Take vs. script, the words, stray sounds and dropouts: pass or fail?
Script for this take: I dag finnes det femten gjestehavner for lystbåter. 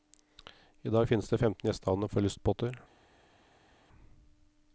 pass